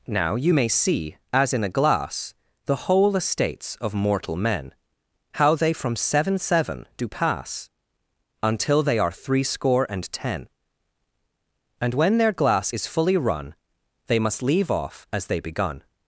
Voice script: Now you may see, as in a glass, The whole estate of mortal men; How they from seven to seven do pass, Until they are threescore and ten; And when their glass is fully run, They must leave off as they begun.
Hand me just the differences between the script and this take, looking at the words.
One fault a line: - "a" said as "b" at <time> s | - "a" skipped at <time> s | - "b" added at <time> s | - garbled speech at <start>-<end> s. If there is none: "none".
- "estate" said as "estates" at 3.2 s
- "to" skipped at 6.4 s